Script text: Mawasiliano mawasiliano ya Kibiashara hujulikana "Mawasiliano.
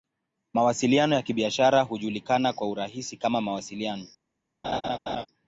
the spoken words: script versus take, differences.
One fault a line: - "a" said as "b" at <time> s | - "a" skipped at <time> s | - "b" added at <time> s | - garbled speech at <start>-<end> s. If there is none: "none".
- "mawasiliano" skipped at 1.1 s
- "kwa urahisi kama" added at 2.5 s